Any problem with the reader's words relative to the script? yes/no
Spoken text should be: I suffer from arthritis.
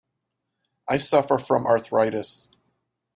no